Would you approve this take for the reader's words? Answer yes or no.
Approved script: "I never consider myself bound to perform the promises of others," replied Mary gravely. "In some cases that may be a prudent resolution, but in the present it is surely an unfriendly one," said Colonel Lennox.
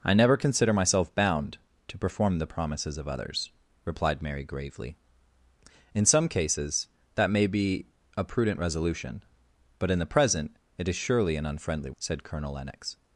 no